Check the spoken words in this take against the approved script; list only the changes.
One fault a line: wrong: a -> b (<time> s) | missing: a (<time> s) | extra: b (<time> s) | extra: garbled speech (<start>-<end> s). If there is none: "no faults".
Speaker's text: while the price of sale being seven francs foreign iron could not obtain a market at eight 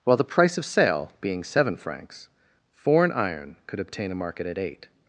missing: not (3.8 s)